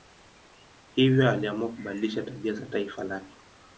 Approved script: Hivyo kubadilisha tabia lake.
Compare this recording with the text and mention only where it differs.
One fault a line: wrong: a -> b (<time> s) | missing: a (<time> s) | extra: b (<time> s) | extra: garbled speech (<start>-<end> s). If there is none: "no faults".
extra: aliamua (1.3 s)
extra: za taifa (2.5 s)